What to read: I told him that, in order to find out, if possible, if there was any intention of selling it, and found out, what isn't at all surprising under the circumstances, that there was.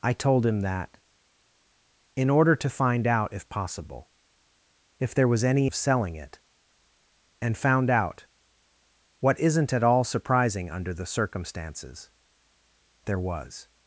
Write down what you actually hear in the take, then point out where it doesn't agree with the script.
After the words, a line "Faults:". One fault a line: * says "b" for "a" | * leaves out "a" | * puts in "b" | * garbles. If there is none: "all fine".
I told him that, in order to find out, if possible, if there was any of selling it, and found out, what isn't at all surprising under the circumstances, there was.
Faults:
* leaves out "intention"
* leaves out "that"